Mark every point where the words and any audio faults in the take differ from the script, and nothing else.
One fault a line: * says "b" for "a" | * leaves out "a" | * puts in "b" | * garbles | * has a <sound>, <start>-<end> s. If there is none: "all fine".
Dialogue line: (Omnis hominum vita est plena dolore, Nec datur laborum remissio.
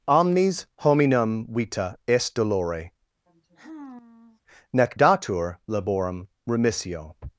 * leaves out "plena"
* has a sigh, 3.3-4.4 s